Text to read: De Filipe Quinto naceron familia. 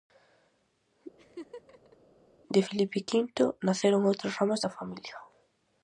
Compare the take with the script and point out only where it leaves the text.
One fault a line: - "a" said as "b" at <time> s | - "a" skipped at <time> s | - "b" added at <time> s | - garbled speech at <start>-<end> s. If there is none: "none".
- "outras ramas da" added at 4.1 s